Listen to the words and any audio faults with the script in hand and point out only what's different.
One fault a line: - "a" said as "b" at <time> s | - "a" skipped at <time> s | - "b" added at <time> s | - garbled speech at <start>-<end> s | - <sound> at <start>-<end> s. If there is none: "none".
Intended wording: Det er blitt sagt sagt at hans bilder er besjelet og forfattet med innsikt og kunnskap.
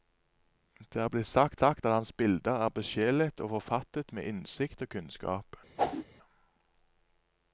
- whoosh at 5.8-6.1 s